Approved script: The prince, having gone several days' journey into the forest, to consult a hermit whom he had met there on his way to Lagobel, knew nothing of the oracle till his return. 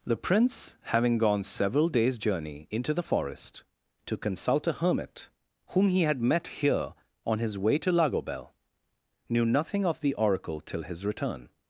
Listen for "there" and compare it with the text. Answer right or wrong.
wrong